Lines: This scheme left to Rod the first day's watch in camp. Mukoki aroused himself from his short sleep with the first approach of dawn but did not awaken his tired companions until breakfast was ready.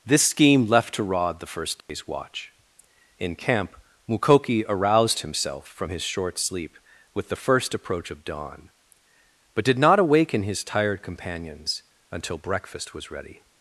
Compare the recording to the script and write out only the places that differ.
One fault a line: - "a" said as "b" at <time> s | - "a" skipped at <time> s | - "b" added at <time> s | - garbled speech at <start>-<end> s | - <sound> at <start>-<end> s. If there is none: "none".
- dropout at 1.8-1.9 s